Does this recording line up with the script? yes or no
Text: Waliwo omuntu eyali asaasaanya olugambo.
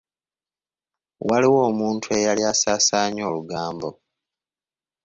yes